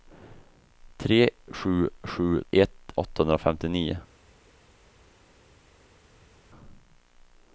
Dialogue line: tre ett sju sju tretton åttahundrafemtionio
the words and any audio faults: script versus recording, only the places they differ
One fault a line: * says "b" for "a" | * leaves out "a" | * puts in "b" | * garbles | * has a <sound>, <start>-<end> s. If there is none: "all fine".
* leaves out "ett"
* says "ett" for "tretton"